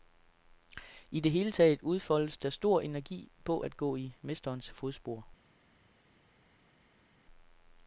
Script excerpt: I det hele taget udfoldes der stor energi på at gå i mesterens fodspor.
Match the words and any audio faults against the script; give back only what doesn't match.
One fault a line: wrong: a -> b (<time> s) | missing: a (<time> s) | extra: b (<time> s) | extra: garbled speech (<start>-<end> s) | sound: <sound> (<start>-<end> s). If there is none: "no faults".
no faults